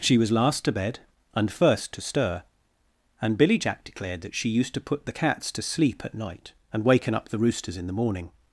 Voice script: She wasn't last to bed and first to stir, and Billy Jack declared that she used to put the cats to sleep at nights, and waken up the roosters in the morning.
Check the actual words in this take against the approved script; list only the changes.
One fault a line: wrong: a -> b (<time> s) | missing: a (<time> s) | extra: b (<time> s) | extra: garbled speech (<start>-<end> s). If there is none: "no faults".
wrong: wasn't -> was (0.2 s)
wrong: nights -> night (6.1 s)